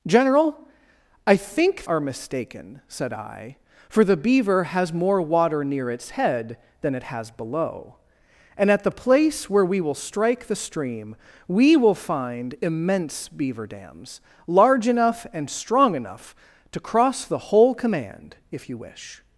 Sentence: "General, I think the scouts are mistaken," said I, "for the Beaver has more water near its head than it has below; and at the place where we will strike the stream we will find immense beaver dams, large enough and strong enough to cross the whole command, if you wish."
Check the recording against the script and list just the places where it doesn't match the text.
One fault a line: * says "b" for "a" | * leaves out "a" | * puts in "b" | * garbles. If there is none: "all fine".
* leaves out "the scouts"